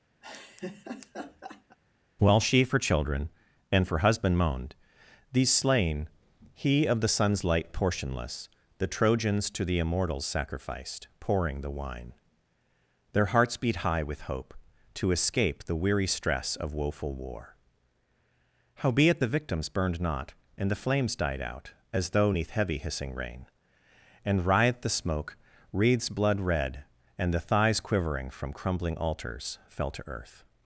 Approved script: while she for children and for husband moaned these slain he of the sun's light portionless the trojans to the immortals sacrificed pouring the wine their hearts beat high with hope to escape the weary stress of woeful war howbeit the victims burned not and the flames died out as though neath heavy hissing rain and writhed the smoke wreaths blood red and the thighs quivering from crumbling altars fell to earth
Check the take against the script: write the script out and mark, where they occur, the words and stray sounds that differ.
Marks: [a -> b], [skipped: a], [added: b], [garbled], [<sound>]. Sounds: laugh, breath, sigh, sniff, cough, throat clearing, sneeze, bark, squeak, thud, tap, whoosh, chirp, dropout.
[laugh] while she for children and for husband moaned these slain he of the sun's light portionless the trojans to the immortals sacrificed pouring the wine their hearts beat high with hope to escape the weary stress of woeful war howbeit the victims burned not and the flames died out as though neath heavy hissing rain and writhed the smoke wreaths blood red and the thighs quivering from crumbling altars fell to earth